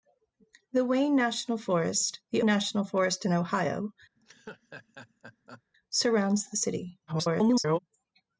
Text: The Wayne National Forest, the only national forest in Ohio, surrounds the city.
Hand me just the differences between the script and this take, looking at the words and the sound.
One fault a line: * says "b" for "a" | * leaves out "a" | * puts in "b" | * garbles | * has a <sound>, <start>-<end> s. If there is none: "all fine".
* leaves out "only"
* has a laugh, 4.2-5.6 s
* garbles